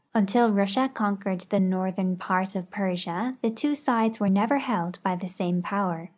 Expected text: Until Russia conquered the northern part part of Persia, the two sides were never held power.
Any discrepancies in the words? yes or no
yes